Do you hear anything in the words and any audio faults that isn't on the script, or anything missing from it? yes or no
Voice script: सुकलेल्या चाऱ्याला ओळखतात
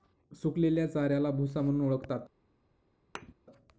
yes